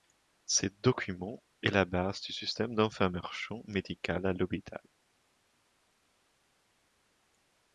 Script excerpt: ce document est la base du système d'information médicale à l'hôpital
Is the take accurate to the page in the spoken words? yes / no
yes